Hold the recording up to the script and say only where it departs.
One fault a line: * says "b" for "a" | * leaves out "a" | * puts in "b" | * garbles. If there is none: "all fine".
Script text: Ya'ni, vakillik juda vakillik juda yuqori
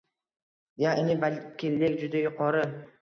* leaves out "vakillik juda"